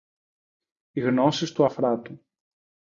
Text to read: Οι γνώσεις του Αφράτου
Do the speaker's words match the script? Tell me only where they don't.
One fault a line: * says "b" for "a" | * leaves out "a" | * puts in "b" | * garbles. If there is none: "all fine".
all fine